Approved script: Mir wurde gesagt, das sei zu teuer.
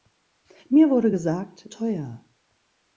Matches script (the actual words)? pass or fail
fail